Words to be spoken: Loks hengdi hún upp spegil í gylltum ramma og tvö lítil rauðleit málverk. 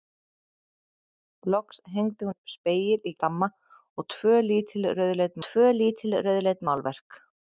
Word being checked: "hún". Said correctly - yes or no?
no